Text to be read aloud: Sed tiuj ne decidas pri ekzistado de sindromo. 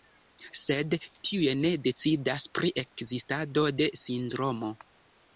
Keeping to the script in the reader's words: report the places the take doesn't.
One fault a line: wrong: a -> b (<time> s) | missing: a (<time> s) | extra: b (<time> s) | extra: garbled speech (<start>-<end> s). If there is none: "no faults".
no faults